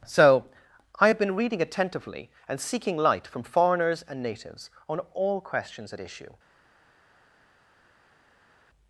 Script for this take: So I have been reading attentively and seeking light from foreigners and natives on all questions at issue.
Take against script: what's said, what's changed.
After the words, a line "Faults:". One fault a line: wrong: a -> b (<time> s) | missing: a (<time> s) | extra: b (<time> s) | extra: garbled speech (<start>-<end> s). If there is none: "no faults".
So I have been reading attentively and seeking light from foreigners and natives on all questions at issue.
Faults:
no faults